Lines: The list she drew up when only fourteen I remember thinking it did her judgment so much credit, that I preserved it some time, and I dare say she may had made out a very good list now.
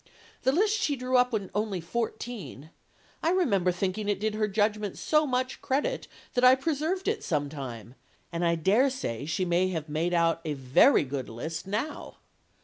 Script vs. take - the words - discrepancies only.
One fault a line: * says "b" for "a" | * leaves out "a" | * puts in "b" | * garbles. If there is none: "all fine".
* says "have" for "had"